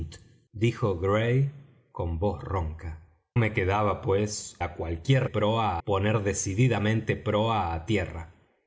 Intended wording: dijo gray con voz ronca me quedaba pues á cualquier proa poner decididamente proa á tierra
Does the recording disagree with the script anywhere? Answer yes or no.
no